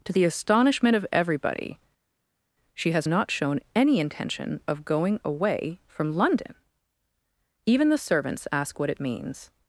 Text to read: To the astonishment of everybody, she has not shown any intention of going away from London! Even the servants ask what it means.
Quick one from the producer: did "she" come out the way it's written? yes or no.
yes